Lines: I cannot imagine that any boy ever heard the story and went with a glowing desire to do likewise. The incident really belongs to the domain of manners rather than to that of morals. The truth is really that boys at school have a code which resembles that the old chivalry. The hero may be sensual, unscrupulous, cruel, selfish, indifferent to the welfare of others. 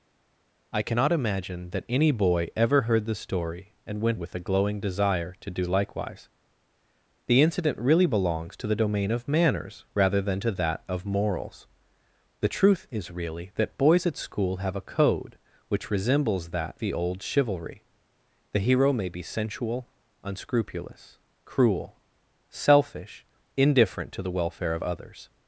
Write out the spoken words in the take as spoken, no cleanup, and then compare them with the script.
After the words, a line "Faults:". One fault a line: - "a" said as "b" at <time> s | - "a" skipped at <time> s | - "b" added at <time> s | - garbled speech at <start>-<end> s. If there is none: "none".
I cannot imagine that any boy ever heard the story and went with a glowing desire to do likewise. The incident really belongs to the domain of manners rather than to that of morals. The truth is really that boys at school have a code which resembles that the old chivalry. The hero may be sensual, unscrupulous, cruel, selfish, indifferent to the welfare of others.
Faults:
none